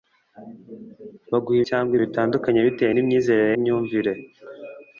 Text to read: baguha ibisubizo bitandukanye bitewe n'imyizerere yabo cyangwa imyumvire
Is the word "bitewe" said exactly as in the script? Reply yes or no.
yes